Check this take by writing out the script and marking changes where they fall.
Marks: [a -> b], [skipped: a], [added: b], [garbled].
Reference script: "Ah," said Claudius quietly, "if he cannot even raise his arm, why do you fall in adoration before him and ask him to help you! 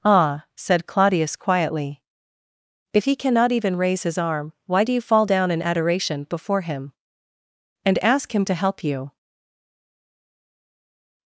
"Ah," said Claudius quietly, "if he cannot even raise his arm, why do you fall [added: down] in adoration before him and ask him to help you!